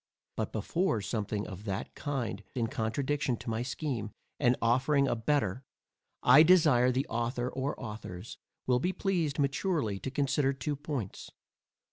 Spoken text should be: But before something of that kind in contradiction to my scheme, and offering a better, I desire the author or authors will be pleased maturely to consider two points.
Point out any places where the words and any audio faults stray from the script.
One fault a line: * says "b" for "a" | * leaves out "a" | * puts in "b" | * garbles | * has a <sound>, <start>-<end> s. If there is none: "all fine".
all fine